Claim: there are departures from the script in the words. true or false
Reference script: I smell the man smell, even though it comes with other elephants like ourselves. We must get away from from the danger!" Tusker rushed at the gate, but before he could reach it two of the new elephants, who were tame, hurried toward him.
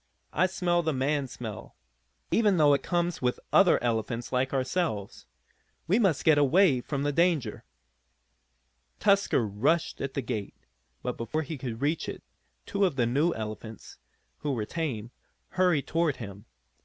true